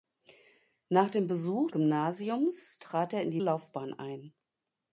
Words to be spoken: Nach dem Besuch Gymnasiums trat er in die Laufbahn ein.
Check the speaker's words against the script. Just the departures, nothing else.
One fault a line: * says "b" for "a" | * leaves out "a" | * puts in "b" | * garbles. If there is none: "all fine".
all fine